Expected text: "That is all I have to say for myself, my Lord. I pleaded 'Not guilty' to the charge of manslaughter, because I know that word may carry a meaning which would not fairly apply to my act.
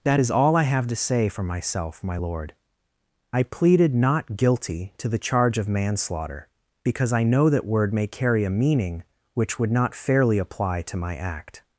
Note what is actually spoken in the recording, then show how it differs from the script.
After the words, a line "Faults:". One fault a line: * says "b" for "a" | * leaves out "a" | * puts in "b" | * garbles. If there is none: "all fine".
"That is all I have to say for myself, my Lord. I pleaded 'Not guilty' to the charge of manslaughter, because I know that word may carry a meaning which would not fairly apply to my act.
Faults:
all fine